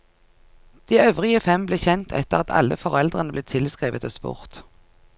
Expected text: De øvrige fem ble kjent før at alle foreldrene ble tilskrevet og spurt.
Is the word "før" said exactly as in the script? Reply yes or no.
no